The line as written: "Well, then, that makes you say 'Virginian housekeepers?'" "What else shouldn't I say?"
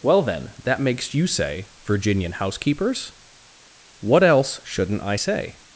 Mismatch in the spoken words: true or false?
false